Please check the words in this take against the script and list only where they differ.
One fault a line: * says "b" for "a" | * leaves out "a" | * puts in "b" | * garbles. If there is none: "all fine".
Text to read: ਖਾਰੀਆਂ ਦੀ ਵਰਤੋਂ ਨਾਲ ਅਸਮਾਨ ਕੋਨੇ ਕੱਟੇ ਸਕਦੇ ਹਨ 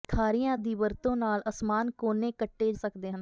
all fine